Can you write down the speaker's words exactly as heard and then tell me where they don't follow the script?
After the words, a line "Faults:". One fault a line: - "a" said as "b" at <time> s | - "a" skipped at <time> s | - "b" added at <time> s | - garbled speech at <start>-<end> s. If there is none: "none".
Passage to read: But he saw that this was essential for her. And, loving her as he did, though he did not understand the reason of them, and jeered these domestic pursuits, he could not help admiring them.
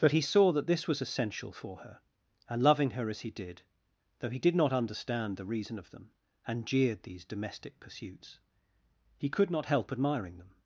But he saw that this was essential for her. And, loving her as he did, though he did not understand the reason of them, and jeered these domestic pursuits, he could not help admiring them.
Faults:
none